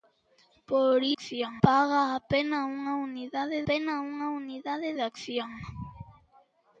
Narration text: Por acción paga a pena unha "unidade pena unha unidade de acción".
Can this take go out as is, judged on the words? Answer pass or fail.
pass